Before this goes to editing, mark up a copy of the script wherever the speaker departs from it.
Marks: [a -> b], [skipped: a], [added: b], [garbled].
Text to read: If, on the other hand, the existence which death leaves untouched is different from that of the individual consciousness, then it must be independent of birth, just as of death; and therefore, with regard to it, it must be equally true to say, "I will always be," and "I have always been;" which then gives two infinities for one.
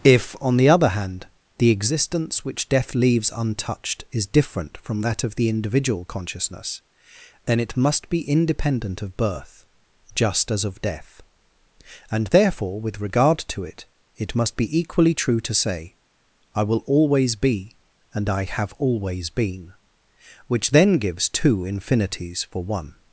If, on the other hand, the existence which death leaves untouched is different from that of the individual consciousness, then it must be independent of birth, just as of death; and therefore, with regard to it, it must be equally true to say, "I will always be," and "I have always been;" which then gives two infinities for one.